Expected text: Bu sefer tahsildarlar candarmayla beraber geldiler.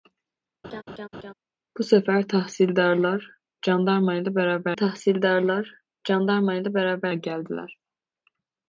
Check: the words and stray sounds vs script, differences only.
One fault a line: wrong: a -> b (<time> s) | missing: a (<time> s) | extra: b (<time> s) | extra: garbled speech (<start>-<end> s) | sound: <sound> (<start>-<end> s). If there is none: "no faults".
sound: laugh (0.6-1.3 s)
extra: tahsildarlar candarmayla beraber (4.8 s)